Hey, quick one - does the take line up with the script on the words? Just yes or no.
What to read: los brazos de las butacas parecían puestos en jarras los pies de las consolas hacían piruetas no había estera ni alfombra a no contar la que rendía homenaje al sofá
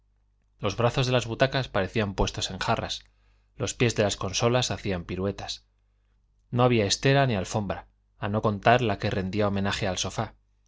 yes